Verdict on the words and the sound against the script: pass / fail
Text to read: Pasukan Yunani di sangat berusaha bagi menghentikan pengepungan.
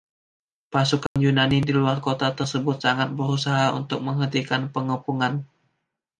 fail